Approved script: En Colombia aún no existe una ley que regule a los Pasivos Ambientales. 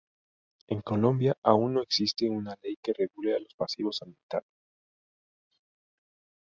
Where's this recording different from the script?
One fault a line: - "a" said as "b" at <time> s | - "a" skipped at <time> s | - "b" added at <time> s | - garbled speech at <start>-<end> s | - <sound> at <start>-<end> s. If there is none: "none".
none